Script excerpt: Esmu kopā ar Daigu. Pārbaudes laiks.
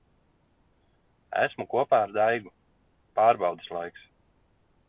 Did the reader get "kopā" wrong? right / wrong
right